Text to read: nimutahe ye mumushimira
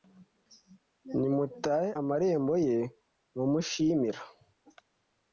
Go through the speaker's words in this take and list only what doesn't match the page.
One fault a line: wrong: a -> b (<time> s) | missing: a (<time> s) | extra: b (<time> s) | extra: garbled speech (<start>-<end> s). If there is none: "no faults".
extra: amarembo (2.0 s)